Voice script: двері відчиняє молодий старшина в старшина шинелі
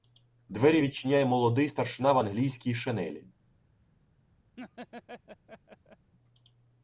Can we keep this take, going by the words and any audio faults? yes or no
no